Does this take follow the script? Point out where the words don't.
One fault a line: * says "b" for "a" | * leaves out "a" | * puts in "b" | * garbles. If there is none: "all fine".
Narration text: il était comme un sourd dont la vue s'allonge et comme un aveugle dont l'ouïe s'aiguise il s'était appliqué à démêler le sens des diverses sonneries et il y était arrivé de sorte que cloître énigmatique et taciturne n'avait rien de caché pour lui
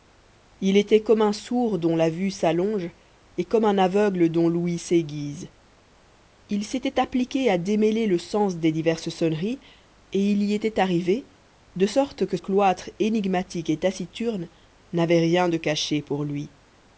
all fine